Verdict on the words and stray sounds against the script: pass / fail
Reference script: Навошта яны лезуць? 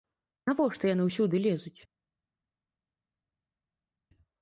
fail